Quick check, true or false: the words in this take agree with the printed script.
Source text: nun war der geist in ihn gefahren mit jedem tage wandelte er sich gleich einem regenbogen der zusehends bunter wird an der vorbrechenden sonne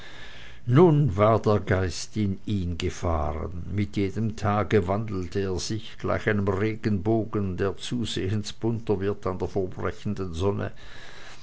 true